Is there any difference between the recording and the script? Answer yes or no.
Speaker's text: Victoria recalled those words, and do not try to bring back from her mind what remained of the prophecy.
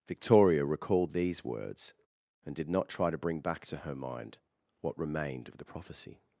yes